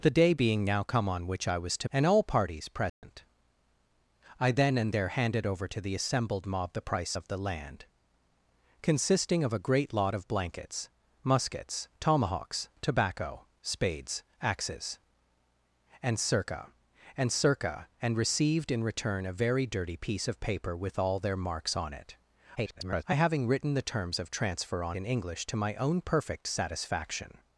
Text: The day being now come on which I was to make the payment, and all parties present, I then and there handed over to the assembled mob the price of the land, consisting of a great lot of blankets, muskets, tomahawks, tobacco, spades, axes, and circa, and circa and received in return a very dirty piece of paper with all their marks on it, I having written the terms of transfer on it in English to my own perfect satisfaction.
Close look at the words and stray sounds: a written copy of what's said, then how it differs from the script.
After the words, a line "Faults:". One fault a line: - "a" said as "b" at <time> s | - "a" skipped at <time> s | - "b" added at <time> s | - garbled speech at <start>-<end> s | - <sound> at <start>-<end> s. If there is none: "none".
The day being now come on which I was to and all parties present, I then and there handed over to the assembled mob the price of the land, consisting of a great lot of blankets, muskets, tomahawks, tobacco, spades, axes, and circa, and circa and received in return a very dirty piece of paper with all their marks on it, [garbled] I having written the terms of transfer on in English to my own perfect satisfaction.
Faults:
- "make the payment" skipped at 1.9 s
- dropout at 2.9-3.0 s
- garbled speech at 22.6-23.0 s
- "it" skipped at 25.0 s